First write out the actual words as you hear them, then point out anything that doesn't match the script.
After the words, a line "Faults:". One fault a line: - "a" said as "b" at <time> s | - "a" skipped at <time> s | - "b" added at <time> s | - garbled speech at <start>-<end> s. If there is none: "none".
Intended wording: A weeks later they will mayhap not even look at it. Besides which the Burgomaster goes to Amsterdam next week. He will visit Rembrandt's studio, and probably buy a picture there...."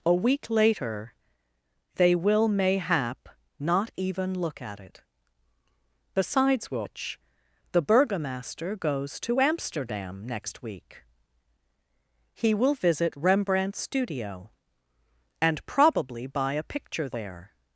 A week later they will mayhap not even look at it. Besides which the Burgomaster goes to Amsterdam next week. He will visit Rembrandt's studio, and probably buy a picture there...."
Faults:
- "weeks" said as "week" at 0.1 s